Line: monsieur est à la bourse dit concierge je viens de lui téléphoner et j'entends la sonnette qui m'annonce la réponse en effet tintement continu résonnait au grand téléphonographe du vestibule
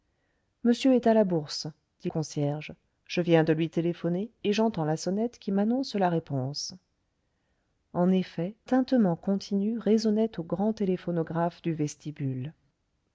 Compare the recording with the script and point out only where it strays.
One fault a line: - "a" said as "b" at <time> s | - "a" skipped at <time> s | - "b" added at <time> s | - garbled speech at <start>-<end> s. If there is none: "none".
none